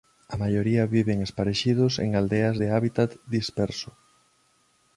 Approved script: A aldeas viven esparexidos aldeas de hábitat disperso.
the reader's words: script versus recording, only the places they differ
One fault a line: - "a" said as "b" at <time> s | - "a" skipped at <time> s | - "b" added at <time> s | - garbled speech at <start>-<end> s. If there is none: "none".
- "aldeas" said as "maioría" at 0.3 s
- "en" added at 2.0 s